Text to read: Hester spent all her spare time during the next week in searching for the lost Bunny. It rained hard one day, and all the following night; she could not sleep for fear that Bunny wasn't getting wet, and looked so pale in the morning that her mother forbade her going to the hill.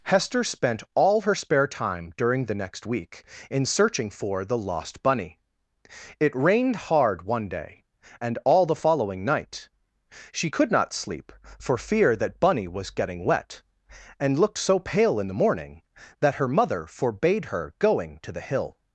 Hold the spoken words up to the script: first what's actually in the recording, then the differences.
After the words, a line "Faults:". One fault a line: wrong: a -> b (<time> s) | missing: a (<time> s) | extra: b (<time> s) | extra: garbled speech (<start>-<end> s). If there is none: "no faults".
Hester spent all her spare time during the next week in searching for the lost Bunny. It rained hard one day, and all the following night; she could not sleep for fear that Bunny was getting wet, and looked so pale in the morning that her mother forbade her going to the hill.
Faults:
wrong: wasn't -> was (12.7 s)